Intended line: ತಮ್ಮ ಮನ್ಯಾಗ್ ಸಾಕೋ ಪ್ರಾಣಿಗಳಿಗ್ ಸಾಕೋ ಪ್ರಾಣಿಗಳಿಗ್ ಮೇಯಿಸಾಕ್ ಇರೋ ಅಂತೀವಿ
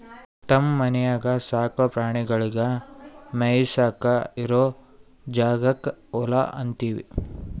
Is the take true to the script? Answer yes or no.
no